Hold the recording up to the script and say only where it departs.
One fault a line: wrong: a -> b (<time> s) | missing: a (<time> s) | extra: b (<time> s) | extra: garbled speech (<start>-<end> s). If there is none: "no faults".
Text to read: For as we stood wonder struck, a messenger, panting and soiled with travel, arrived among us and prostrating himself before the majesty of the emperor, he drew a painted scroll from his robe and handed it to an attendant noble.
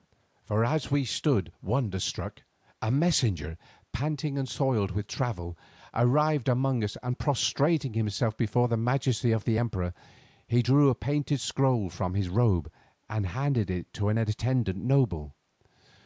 no faults